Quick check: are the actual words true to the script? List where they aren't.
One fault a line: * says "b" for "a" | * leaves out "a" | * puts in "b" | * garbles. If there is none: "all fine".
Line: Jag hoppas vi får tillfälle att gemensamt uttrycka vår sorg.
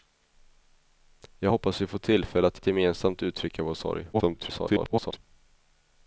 * puts in "att"
* garbles